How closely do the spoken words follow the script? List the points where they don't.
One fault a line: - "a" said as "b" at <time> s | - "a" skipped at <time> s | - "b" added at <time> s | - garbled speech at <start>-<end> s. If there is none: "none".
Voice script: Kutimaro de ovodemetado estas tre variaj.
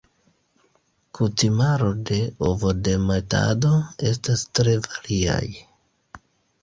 none